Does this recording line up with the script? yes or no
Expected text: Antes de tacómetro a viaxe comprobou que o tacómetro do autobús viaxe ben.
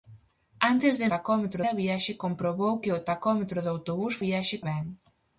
yes